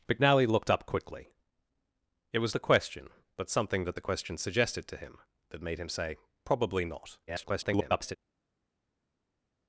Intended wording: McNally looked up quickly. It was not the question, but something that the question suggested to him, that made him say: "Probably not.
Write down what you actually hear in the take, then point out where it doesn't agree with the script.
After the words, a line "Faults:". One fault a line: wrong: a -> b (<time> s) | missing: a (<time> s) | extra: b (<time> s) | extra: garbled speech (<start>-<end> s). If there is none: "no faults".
McNally looked up quickly. It was the question, but something that the question suggested to him, that made him say: "Probably not. [garbled]
Faults:
missing: not (2.5 s)
extra: garbled speech (7.3-8.2 s)